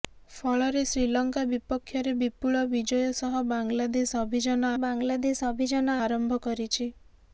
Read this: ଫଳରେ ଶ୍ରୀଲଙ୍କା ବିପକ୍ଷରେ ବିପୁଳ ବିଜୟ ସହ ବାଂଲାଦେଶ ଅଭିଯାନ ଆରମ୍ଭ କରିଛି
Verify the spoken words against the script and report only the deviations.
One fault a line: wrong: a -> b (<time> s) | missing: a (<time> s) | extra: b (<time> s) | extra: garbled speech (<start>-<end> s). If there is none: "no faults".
extra: ବାଂଲାଦେଶ ଅଭିଯାନ (4.8 s)